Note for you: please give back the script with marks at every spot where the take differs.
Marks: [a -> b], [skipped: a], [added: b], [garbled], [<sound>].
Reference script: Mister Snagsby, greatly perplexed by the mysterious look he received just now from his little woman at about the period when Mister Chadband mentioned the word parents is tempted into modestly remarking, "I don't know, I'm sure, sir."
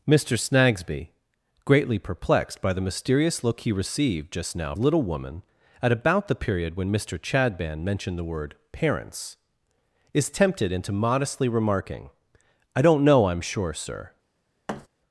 Mister Snagsby, greatly perplexed by the mysterious look he received just now [skipped: from his] little woman at about the period when Mister Chadband mentioned the word parents is tempted into modestly remarking, "I don't know, I'm sure, sir." [thud]